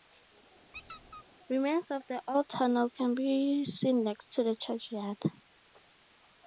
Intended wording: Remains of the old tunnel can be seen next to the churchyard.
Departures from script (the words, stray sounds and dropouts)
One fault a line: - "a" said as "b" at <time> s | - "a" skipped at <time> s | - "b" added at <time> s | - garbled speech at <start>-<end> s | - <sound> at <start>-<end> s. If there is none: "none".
- squeak at 0.7-1.2 s